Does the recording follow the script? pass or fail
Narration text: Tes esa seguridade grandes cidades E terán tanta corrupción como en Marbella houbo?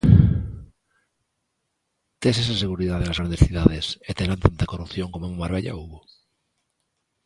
fail